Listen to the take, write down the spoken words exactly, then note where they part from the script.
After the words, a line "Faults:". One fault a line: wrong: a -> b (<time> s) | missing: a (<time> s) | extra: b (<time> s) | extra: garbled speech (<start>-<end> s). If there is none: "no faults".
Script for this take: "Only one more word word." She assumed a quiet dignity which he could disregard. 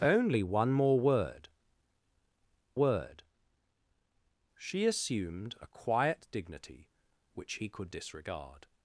"Only one more word word." She assumed a quiet dignity which he could disregard.
Faults:
no faults